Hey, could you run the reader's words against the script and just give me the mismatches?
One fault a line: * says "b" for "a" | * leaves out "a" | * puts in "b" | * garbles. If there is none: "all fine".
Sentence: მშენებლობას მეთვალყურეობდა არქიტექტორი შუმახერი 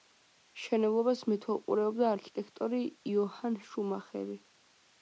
* puts in "იოჰან"